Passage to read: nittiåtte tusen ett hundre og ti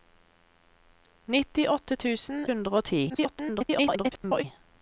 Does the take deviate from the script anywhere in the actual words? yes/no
yes